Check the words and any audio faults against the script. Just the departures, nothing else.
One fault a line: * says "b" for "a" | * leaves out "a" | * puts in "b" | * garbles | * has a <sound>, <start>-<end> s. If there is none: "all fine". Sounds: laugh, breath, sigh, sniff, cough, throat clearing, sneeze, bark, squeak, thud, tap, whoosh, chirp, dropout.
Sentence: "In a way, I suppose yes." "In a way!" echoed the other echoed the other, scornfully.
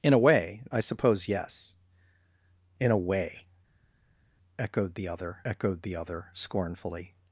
all fine